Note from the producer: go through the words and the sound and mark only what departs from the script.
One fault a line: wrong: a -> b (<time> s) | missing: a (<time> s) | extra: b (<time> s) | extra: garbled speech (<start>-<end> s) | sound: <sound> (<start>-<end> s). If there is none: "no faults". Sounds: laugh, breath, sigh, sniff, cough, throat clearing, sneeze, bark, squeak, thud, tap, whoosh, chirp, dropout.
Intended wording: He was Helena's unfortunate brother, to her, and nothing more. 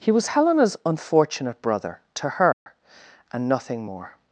sound: dropout (2.5-2.7 s)